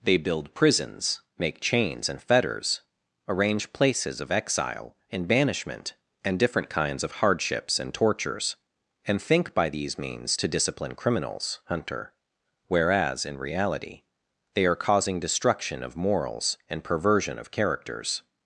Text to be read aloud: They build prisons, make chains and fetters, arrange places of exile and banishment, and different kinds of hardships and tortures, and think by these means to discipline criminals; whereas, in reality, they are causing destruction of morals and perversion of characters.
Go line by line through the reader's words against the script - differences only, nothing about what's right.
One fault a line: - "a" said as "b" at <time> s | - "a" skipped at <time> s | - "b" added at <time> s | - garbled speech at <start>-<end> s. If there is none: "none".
- "hunter" added at 11.7 s